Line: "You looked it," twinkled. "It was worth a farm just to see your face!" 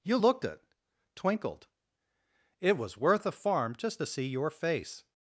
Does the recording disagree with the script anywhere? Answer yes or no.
no